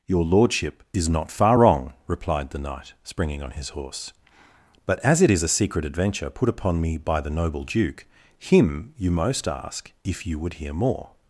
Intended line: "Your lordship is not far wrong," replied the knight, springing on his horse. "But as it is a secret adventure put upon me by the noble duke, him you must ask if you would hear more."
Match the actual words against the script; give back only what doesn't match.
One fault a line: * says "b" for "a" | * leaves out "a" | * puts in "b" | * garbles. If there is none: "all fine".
* says "most" for "must"